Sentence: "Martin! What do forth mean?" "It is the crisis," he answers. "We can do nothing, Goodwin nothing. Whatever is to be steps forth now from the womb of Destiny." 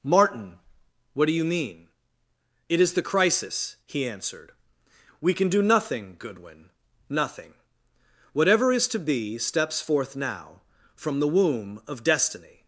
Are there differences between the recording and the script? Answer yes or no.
yes